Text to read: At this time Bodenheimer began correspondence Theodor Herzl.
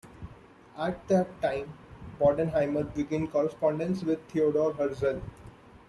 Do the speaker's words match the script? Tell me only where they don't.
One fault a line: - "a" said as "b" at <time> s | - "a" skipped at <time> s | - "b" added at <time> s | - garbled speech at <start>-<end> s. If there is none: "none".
- "this" said as "that" at 1.1 s
- "with" added at 4.0 s